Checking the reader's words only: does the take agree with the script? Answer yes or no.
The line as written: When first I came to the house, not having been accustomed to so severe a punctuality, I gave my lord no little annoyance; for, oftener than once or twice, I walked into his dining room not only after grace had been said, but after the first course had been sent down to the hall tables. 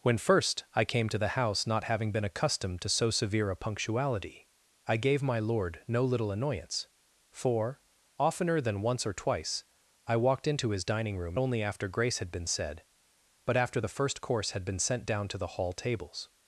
no